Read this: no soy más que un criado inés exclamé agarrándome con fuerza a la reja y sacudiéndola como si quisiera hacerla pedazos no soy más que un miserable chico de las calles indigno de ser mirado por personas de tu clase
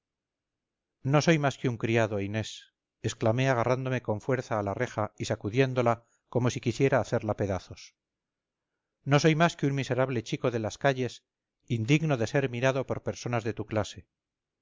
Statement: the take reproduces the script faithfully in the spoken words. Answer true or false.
true